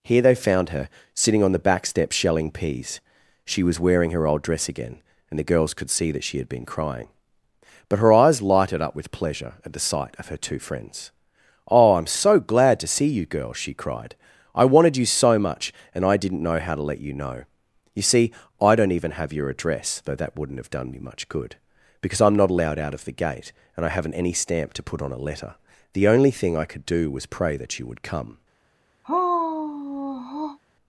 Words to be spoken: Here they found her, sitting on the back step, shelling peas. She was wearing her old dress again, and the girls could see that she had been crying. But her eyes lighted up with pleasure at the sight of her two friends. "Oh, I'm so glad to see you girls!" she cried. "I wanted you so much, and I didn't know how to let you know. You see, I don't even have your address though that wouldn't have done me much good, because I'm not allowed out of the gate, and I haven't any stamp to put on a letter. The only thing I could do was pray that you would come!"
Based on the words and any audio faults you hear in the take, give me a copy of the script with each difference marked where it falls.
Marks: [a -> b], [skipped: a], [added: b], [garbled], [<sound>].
Here they found her, sitting on the back step, shelling peas. She was wearing her old dress again, and the girls could see that she had been crying. But her eyes lighted up with pleasure at the sight of her two friends. "Oh, I'm so glad to see you girls!" she cried. "I wanted you so much, and I didn't know how to let you know. You see, I don't even have your address though that wouldn't have done me much good, because I'm not allowed out of the gate, and I haven't any stamp to put on a letter. The only thing I could do was pray that you would come!" [sigh]